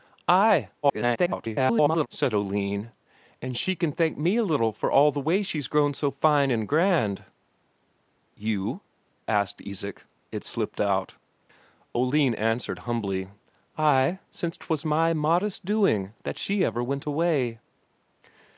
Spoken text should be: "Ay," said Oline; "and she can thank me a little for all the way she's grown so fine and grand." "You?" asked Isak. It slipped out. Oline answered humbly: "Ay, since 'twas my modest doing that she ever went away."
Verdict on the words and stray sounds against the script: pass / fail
fail